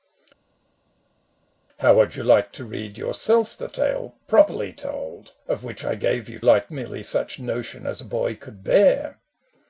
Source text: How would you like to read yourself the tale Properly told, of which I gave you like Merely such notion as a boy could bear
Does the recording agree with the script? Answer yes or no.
yes